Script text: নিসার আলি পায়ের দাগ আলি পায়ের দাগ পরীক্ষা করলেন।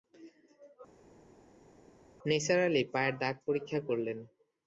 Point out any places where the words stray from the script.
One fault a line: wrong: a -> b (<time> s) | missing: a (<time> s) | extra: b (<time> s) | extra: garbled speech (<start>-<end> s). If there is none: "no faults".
missing: আলি পায়ের দাগ (3.3 s)